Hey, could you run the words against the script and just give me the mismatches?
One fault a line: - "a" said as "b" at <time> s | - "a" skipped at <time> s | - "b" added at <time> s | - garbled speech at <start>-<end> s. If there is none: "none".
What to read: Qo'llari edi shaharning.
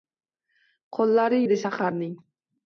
none